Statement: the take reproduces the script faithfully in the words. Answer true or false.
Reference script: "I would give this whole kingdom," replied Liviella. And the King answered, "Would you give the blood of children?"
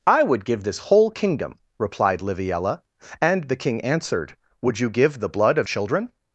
true